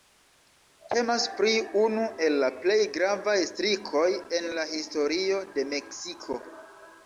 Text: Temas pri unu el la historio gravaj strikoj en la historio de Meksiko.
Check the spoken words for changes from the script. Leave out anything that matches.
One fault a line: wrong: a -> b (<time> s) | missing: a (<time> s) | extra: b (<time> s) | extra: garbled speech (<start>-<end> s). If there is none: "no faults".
wrong: historio -> plej (2.6 s)